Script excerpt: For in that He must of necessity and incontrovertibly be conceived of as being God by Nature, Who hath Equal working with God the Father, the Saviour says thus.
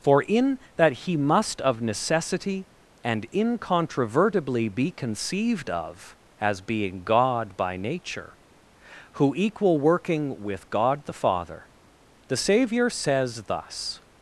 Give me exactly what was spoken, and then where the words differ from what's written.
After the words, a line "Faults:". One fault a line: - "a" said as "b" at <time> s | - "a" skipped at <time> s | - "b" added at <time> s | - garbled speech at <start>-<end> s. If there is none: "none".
For in that He must of necessity and incontrovertibly be conceived of as being God by Nature, Who Equal working with God the Father, the Saviour says thus.
Faults:
- "hath" skipped at 9.3 s